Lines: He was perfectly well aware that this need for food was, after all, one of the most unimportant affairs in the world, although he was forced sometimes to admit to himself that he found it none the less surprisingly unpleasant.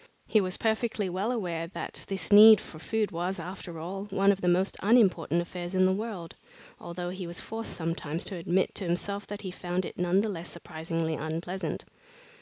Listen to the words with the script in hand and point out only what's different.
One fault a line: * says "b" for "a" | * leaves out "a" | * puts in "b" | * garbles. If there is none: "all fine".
all fine